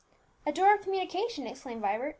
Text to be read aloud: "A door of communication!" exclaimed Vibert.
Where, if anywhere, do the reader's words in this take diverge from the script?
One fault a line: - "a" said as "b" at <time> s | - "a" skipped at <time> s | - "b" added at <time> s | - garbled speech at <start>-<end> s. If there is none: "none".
none